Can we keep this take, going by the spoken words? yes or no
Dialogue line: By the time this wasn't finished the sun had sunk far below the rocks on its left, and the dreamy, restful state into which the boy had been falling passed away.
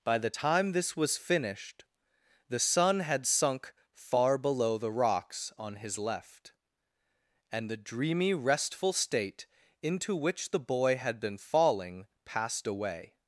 no